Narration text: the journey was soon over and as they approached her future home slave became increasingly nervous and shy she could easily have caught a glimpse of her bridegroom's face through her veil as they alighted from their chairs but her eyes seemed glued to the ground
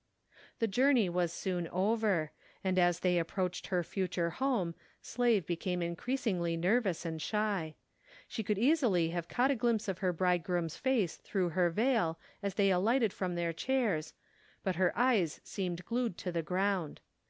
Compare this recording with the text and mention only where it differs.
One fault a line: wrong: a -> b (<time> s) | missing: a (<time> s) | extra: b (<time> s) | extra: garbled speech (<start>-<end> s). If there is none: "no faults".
no faults